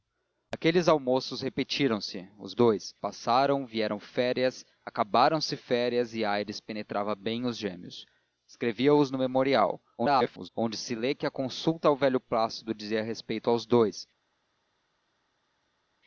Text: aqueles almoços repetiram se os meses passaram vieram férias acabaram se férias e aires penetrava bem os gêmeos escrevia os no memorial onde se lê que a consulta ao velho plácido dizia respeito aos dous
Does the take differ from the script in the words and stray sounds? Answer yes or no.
yes